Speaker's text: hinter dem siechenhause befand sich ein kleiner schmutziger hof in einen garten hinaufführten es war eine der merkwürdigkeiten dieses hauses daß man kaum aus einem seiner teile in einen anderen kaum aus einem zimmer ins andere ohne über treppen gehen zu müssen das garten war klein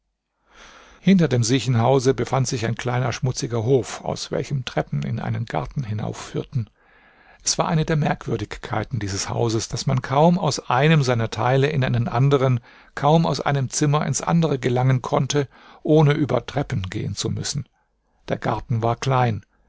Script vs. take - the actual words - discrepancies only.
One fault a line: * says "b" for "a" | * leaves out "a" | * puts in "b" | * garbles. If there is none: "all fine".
* puts in "aus welchem treppen"
* puts in "gelangen konnte"
* says "der" for "das"